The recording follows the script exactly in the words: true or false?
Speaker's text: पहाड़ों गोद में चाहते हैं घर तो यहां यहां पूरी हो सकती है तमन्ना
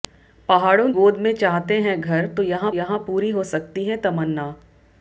true